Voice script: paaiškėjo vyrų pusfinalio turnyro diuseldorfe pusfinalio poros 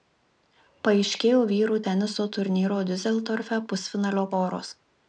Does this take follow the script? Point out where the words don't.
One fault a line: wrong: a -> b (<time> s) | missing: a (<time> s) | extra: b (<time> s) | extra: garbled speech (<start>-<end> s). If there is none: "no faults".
wrong: pusfinalio -> teniso (1.9 s)